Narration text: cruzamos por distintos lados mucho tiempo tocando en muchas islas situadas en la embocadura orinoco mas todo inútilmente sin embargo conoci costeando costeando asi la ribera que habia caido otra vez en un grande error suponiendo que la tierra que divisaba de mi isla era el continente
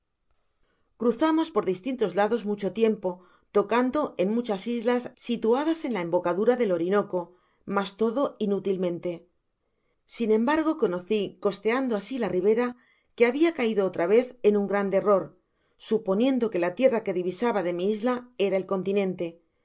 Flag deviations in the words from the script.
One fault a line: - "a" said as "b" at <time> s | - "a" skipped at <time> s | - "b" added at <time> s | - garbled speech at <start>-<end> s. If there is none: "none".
- "del" added at 6.6 s
- "costeando" skipped at 11.9 s